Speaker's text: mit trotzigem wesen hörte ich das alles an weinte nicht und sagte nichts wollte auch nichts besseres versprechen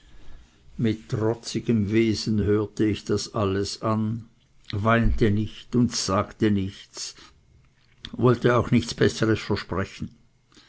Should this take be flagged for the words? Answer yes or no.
no